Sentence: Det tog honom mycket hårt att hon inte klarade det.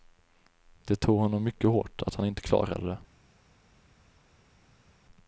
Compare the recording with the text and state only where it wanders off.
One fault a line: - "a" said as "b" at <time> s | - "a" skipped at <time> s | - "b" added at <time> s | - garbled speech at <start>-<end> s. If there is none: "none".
- "hon" said as "han" at 2.1 s